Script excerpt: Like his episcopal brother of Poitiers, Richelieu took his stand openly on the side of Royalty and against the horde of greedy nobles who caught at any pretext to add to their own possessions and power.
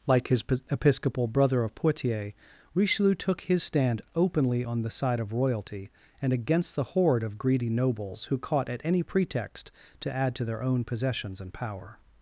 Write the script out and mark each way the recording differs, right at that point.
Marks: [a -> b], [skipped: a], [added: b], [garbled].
Like his episcopal brother of Poitiers, Richelieu took his stand openly on the side of Royalty and against the horde of greedy nobles who caught at any pretext to add to their own possessions and power.